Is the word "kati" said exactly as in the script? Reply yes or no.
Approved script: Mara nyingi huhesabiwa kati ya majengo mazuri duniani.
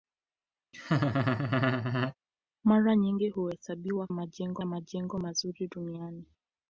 no